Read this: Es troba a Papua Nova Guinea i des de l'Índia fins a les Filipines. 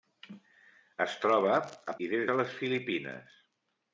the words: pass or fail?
fail